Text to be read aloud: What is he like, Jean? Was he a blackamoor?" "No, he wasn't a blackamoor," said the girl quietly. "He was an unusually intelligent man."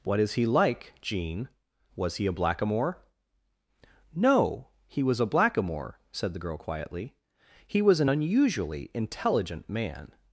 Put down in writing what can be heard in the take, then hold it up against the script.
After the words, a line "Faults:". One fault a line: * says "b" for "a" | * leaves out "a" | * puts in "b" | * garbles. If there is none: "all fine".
What is he like, Jean? Was he a blackamoor?" "No, he was a blackamoor," said the girl quietly. "He was an unusually intelligent man."
Faults:
* says "was" for "wasn't"